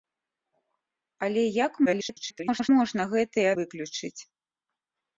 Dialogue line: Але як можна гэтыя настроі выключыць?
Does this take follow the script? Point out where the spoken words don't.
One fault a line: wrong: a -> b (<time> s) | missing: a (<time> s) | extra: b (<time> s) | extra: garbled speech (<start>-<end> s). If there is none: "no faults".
extra: garbled speech (1.9-2.7 s)
missing: настроі (3.5 s)